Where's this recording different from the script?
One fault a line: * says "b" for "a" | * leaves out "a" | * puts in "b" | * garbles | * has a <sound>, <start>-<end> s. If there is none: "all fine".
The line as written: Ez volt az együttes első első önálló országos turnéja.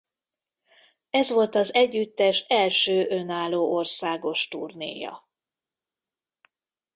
* leaves out "első"